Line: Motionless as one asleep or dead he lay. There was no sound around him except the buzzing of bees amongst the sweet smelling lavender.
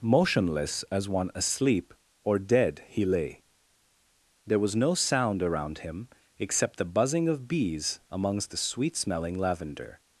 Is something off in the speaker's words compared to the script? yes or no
no